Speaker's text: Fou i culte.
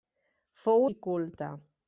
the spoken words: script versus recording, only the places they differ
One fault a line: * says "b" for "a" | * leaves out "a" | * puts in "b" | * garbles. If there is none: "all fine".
all fine